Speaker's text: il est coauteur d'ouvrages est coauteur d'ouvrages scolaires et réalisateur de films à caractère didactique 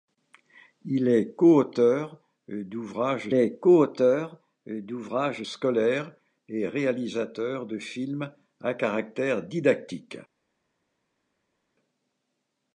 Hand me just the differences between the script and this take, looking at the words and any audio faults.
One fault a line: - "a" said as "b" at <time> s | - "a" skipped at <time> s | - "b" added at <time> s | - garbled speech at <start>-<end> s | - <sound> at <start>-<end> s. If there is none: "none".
none